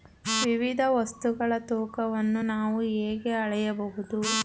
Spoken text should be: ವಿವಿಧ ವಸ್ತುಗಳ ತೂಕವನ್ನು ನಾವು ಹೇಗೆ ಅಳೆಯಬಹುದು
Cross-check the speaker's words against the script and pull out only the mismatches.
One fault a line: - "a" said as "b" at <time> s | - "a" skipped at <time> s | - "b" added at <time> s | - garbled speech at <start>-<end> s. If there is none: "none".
none